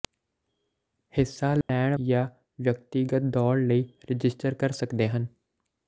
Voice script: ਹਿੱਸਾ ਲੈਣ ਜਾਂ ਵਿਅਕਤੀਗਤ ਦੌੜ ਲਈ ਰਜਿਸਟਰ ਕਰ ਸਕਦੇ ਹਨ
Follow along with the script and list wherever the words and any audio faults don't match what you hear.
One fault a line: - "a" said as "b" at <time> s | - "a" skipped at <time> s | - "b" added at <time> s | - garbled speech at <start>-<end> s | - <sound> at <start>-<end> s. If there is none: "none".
- dropout at 1.6-1.7 s